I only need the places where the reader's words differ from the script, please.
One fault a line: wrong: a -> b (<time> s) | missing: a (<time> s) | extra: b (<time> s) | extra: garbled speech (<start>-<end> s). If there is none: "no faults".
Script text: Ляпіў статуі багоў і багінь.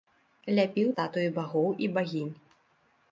no faults